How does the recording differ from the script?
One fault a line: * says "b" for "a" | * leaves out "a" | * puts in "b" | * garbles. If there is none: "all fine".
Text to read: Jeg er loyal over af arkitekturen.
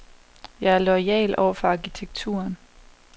* says "for" for "af"